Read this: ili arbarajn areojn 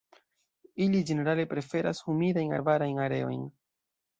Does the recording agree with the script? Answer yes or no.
no